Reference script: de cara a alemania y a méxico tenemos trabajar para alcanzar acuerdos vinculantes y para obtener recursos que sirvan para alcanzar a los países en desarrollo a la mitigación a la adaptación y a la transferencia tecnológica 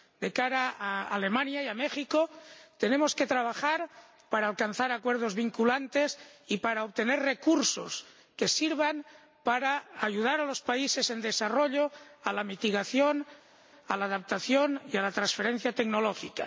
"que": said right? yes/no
yes